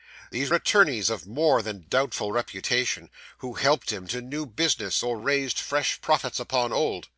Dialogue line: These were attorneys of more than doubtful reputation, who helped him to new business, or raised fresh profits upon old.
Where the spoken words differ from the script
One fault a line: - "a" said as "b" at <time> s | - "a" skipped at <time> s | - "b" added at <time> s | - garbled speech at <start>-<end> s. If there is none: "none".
- "were" skipped at 0.5 s